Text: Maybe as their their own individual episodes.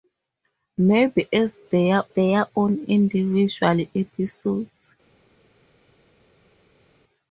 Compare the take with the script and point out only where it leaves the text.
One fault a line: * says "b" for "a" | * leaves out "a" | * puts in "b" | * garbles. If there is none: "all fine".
all fine